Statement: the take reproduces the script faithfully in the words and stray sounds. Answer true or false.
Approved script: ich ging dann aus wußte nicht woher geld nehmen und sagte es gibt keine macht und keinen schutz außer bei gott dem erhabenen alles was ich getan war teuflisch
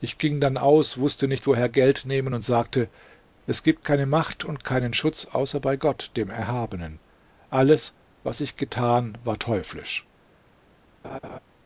false